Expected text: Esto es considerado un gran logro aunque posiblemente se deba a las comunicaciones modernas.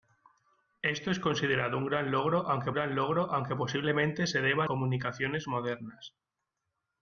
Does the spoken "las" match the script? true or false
false